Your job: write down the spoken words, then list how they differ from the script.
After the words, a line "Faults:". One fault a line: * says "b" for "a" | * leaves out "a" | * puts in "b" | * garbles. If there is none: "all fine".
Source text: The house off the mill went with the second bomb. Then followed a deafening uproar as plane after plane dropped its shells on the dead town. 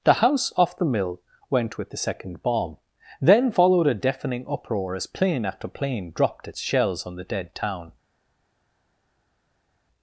The house off the mill went with the second bomb. Then followed a deafening uproar as plane after plane dropped its shells on the dead town.
Faults:
all fine